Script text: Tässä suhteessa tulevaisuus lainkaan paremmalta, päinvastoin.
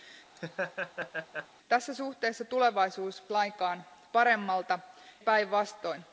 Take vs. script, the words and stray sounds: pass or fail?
fail